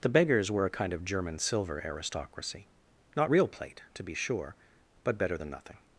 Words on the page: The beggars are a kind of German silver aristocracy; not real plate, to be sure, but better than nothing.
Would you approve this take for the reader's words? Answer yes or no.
no